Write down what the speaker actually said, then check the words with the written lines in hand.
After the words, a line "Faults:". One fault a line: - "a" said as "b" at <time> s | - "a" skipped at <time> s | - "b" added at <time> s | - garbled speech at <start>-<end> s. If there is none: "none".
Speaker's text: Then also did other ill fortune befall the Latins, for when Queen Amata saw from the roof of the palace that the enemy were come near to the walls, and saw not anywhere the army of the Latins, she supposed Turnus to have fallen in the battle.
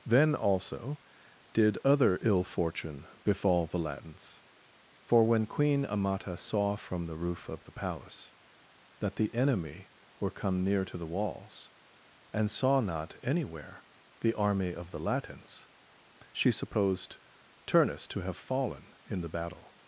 Then also did other ill fortune befall the Latins, for when Queen Amata saw from the roof of the palace that the enemy were come near to the walls, and saw not anywhere the army of the Latins, she supposed Turnus to have fallen in the battle.
Faults:
none